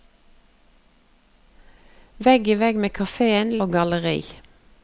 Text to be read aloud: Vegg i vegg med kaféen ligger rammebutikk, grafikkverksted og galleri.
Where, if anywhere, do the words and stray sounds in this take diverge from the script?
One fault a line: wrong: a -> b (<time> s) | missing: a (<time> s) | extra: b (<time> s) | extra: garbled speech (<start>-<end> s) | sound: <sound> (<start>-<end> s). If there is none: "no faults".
missing: ligger rammebutikk grafikkverksted (3.5 s)